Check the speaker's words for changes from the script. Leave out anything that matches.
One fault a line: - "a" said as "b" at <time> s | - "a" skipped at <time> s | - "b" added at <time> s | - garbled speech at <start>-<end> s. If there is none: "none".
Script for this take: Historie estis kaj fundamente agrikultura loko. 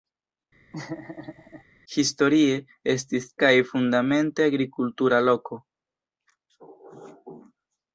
none